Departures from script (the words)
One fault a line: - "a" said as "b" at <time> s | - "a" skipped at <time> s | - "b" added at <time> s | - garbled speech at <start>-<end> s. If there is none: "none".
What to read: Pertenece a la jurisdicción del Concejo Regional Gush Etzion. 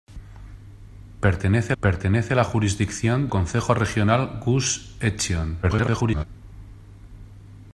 - "pertenece" added at 1.8 s
- "del" skipped at 3.3 s
- garbled speech at 5.6-6.2 s